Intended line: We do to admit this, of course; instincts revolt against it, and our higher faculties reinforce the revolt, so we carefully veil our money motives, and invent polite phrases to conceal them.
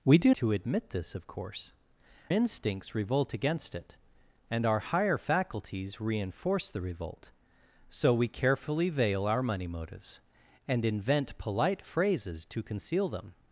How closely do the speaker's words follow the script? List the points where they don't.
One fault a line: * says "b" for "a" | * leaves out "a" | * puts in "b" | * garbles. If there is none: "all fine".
all fine